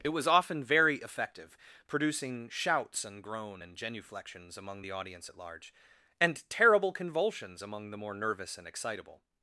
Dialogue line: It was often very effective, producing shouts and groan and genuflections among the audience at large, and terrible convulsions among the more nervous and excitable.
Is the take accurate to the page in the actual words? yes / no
yes